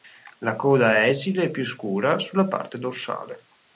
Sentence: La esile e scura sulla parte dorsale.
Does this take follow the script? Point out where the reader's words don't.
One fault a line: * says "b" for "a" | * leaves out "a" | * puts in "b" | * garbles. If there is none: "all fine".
* puts in "coda è"
* puts in "più"